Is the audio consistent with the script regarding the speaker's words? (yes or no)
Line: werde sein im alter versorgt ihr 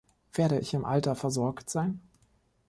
no